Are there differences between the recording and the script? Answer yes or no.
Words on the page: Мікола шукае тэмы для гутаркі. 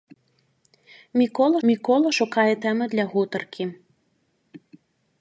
yes